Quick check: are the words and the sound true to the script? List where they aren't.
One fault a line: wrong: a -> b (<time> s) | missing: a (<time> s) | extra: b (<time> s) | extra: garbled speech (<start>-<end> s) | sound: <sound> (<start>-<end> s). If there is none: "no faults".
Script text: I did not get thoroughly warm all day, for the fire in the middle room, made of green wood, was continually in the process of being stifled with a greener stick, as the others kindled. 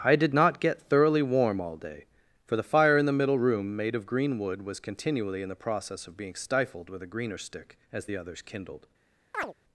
sound: chirp (9.3-9.5 s)